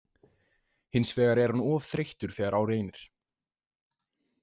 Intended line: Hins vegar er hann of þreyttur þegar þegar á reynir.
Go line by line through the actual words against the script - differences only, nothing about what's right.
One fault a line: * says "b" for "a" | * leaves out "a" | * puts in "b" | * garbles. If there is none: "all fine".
* leaves out "þegar"